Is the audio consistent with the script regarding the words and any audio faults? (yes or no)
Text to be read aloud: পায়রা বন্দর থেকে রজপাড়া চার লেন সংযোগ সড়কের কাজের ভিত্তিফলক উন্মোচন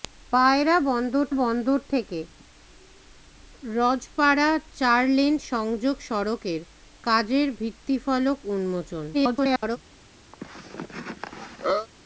no